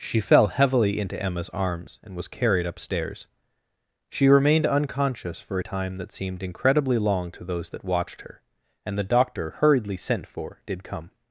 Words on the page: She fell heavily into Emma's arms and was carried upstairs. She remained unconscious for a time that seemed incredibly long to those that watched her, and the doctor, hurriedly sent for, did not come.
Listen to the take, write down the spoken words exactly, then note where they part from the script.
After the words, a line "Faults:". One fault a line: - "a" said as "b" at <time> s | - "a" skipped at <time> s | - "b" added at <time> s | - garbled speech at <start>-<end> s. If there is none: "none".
She fell heavily into Emma's arms and was carried upstairs. She remained unconscious for a time that seemed incredibly long to those that watched her, and the doctor, hurriedly sent for, did come.
Faults:
- "not" skipped at 10.8 s